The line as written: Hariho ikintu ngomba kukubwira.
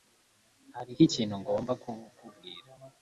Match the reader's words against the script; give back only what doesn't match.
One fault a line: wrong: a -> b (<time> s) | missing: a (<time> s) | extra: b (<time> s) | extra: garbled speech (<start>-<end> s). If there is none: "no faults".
no faults